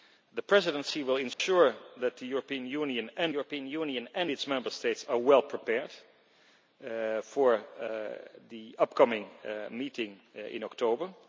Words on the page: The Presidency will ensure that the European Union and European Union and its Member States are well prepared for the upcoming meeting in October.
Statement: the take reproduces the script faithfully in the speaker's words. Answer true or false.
true